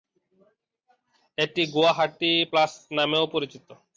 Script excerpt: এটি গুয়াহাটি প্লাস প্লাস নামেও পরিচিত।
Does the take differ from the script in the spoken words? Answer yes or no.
yes